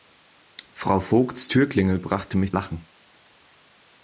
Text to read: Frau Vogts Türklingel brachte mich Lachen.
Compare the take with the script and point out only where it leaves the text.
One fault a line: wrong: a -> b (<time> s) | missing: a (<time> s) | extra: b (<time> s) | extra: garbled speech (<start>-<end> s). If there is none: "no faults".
no faults